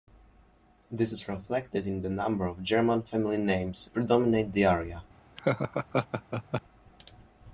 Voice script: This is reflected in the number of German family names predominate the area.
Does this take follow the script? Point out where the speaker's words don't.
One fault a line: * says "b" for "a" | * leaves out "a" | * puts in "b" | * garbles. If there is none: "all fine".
all fine